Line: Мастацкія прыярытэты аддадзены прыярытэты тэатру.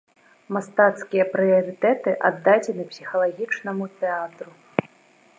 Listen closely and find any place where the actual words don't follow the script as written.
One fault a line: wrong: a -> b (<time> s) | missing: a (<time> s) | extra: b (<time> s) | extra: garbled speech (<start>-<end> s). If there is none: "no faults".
wrong: прыярытэты -> псіхалагічнаму (2.9 s)